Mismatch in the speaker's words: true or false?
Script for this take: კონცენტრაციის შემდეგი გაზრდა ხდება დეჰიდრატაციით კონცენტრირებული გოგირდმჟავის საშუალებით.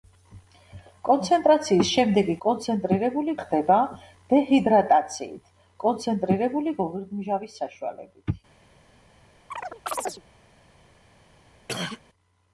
true